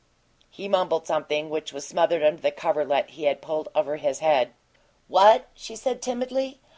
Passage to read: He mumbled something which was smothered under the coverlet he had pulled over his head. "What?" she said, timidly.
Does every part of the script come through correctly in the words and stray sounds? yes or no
yes